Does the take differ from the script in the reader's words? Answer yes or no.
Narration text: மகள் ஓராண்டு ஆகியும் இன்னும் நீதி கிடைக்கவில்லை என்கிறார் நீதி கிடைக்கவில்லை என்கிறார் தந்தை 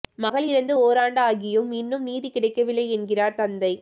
yes